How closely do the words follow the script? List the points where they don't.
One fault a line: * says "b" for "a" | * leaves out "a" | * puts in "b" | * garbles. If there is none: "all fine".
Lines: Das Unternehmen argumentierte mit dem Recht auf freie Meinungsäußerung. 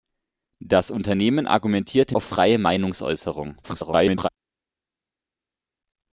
* leaves out "mit dem Recht"
* garbles